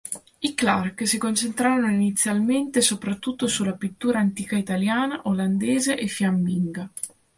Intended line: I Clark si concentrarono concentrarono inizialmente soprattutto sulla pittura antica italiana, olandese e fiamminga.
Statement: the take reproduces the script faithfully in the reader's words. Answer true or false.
false